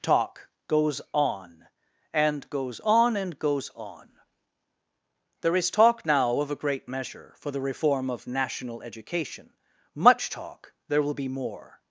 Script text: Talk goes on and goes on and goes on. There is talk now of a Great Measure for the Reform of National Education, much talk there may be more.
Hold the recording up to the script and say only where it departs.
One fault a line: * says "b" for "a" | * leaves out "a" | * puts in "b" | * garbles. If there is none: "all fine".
* says "will" for "may"